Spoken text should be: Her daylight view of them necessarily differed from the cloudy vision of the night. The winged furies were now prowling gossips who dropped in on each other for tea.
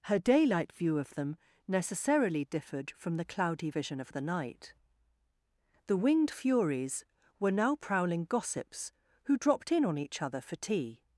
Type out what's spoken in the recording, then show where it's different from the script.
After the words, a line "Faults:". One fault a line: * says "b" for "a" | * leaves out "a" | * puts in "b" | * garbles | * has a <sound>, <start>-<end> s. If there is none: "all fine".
Her daylight view of them necessarily differed from the cloudy vision of the night. The winged furies were now prowling gossips who dropped in on each other for tea.
Faults:
all fine